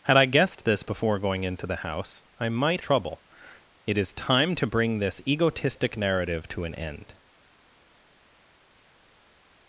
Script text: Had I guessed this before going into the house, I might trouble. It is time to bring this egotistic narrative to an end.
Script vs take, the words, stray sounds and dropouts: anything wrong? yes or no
no